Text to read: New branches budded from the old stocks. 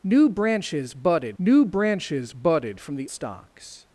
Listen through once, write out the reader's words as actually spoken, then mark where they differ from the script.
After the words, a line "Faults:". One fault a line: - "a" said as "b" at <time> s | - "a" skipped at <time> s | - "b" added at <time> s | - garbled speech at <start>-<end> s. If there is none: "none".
New branches budded new branches budded from the stocks.
Faults:
- "new branches budded" added at 1.4 s
- "old" skipped at 3.1 s